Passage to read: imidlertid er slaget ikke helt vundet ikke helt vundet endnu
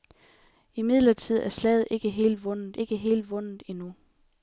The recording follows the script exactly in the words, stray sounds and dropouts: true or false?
true